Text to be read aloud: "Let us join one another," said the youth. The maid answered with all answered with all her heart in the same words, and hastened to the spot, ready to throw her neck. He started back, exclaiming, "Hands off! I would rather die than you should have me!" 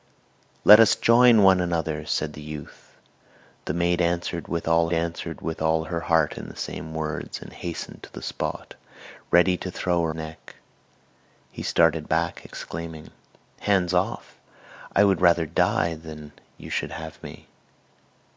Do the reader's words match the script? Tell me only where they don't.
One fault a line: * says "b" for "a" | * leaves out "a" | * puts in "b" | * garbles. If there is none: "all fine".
all fine